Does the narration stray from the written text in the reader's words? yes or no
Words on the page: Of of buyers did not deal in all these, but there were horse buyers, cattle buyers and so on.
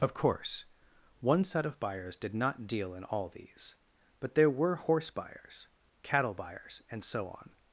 yes